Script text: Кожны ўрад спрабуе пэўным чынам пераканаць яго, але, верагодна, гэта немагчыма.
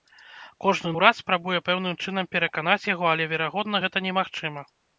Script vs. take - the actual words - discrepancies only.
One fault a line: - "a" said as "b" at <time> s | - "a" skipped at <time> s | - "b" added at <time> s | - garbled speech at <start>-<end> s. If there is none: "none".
none